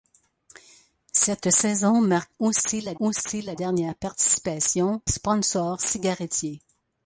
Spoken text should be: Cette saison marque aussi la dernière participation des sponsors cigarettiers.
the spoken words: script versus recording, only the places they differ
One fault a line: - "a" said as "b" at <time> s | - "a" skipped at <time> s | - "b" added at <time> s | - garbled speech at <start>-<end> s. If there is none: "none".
- "aussi la" added at 3.0 s
- "des" skipped at 5.0 s